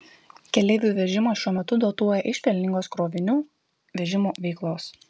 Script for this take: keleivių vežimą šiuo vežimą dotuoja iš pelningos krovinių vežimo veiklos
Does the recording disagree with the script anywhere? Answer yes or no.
yes